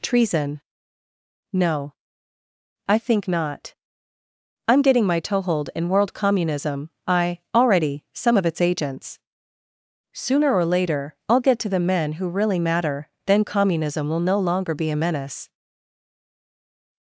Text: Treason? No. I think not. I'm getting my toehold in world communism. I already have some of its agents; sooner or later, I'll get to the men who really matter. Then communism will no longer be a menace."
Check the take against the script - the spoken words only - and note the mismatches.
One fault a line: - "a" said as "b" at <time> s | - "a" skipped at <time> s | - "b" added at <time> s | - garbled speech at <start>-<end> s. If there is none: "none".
- "have" skipped at 8.0 s